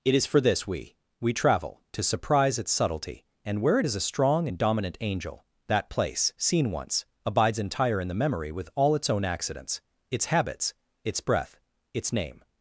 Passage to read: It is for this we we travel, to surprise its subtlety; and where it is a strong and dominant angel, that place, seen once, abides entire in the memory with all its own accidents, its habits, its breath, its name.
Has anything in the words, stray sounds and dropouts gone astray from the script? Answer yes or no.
no